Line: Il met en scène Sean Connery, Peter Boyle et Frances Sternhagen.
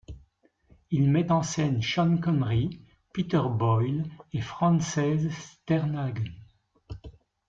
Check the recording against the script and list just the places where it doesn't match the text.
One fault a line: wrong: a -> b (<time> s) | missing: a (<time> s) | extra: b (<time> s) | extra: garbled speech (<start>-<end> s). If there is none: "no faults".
no faults